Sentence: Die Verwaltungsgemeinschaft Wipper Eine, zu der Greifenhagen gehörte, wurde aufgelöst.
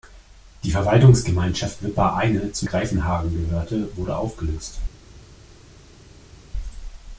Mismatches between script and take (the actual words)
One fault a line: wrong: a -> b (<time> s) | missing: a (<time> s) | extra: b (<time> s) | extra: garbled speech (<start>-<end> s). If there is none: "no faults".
missing: der (2.6 s)